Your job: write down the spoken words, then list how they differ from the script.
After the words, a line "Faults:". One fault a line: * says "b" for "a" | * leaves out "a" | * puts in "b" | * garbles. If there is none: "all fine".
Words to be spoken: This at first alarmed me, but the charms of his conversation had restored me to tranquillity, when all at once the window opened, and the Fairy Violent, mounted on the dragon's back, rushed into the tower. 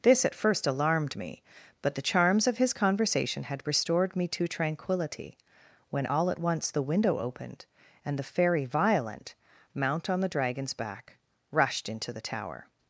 This at first alarmed me, but the charms of his conversation had restored me to tranquillity, when all at once the window opened, and the Fairy Violent, mount on the dragon's back, rushed into the tower.
Faults:
* says "mount" for "mounted"